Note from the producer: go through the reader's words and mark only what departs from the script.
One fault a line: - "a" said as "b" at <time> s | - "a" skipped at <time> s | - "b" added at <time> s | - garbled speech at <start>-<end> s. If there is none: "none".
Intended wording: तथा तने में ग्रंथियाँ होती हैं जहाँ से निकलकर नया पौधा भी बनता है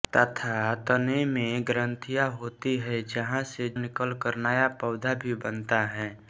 none